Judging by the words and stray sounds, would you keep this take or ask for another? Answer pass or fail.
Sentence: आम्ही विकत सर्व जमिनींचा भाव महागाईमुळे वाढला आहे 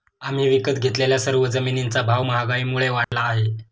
fail